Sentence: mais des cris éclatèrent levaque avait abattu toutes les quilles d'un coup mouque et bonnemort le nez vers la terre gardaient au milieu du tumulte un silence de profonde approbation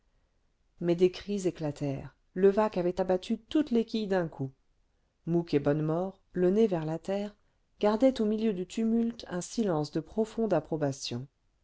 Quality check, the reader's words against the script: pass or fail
pass